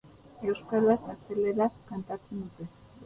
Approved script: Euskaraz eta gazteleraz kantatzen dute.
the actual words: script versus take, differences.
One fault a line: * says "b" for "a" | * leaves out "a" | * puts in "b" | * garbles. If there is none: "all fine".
* leaves out "eta"